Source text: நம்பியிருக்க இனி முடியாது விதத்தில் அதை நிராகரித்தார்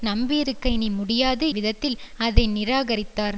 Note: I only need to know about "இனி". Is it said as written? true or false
true